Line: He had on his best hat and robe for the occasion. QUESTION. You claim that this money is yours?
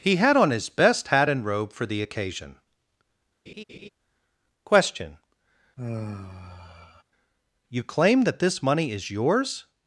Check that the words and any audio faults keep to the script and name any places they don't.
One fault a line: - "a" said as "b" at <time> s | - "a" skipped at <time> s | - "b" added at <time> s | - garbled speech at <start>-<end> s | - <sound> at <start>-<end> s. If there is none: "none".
- laugh at 3.5-3.9 s
- sigh at 5.8-7.0 s